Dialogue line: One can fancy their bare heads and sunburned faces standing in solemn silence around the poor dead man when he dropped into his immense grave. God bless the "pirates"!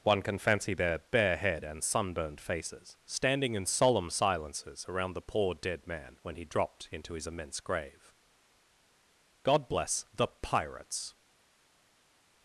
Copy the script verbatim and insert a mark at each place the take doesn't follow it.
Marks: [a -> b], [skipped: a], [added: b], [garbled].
One can fancy their bare [heads -> head] and sunburned faces standing in solemn [silence -> silences] around the poor dead man when he dropped into his immense grave. God bless the "pirates"!